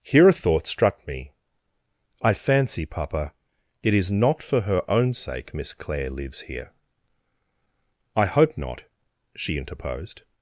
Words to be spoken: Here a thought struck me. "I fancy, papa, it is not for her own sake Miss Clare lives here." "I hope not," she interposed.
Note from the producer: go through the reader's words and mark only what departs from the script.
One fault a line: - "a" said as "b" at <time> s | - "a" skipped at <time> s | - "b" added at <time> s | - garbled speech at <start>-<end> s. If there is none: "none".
none